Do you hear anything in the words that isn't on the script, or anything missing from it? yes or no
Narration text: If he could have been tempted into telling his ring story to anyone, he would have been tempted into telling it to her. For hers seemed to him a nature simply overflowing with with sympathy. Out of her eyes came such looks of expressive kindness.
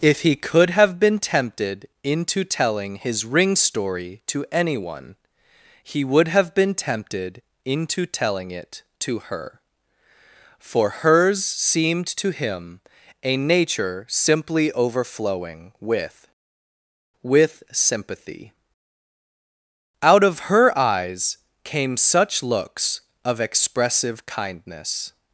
no